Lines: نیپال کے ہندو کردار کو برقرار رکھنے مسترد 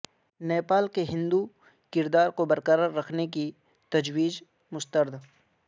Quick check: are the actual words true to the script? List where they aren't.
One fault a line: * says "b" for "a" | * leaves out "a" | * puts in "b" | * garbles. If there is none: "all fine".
* puts in "کی تجویز"